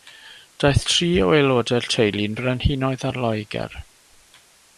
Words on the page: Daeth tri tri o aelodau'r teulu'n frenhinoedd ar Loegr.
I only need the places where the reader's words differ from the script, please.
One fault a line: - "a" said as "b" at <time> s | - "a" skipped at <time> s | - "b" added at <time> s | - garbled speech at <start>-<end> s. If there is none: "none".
- "tri" skipped at 1.1 s